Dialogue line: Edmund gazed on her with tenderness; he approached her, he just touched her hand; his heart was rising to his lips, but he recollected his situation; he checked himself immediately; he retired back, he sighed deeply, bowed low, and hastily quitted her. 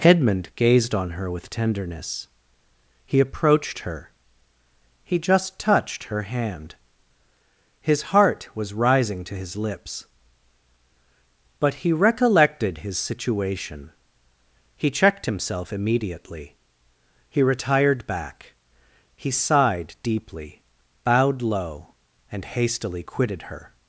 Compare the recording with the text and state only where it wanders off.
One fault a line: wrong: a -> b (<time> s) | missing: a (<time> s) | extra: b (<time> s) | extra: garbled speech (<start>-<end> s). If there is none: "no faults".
no faults